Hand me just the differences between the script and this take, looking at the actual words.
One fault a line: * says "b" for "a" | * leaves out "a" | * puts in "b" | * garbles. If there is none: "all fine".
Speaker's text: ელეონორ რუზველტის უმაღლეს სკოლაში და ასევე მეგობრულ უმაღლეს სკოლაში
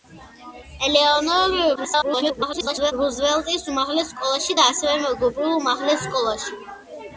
* garbles